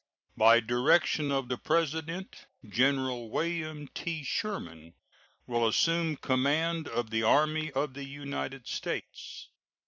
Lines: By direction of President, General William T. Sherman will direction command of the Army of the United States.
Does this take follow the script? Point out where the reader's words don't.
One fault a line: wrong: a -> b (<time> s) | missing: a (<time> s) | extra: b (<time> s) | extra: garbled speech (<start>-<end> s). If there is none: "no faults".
extra: the (1.5 s)
wrong: direction -> assume (5.7 s)